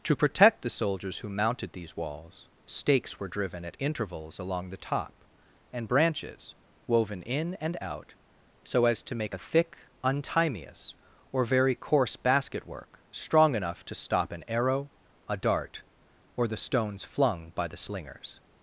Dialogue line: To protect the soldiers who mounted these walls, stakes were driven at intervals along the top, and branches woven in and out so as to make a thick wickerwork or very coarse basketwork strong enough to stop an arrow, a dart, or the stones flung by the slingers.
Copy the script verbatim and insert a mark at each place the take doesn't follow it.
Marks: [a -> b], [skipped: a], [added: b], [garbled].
To protect the soldiers who mounted these walls, stakes were driven at intervals along the top, and branches woven in and out so as to make a thick [wickerwork -> untimeous] or very coarse basketwork strong enough to stop an arrow, a dart, or the stones flung by the slingers.